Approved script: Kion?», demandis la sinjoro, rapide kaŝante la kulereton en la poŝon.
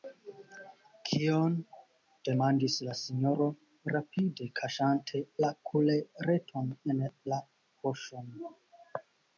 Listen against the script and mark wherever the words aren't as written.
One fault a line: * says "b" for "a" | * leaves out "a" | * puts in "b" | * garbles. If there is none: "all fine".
all fine